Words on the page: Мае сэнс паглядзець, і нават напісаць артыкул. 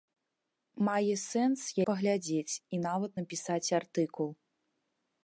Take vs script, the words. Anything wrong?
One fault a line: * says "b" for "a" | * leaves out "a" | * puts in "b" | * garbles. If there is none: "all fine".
all fine